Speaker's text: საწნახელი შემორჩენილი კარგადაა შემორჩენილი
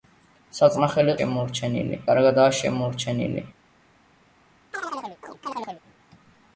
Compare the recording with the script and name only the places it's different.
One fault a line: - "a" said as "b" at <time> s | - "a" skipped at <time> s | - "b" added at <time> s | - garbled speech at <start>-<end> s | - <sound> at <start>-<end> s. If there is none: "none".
- chirp at 4.7-5.8 s